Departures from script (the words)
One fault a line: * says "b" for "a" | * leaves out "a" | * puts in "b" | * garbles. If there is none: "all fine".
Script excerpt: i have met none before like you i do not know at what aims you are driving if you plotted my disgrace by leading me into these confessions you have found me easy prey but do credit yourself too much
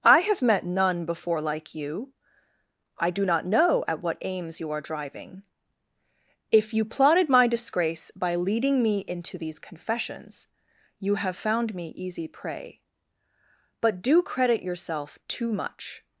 all fine